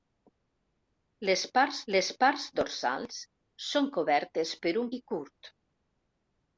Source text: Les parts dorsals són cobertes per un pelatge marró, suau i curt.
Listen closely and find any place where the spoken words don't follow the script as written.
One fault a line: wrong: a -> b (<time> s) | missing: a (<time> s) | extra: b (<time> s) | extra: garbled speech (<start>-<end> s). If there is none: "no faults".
extra: les parts (1.9 s)
missing: pelatge marró suau (4.9 s)